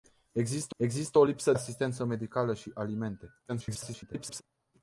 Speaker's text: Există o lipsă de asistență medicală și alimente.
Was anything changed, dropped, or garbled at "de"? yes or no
yes